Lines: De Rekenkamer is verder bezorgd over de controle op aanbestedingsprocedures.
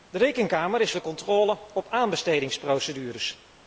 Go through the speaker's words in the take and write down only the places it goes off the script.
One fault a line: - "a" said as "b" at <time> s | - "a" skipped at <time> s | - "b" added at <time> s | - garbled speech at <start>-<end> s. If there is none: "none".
- "verder bezorgd over" skipped at 0.9 s